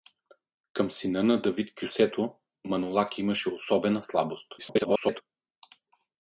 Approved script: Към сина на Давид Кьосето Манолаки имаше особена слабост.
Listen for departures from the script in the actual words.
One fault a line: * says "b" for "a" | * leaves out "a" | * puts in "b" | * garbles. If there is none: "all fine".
* garbles